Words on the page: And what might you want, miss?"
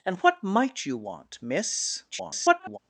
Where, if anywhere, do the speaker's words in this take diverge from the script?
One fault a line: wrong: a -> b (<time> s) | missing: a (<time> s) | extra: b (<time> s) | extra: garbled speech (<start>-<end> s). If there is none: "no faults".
extra: garbled speech (2.1-2.8 s)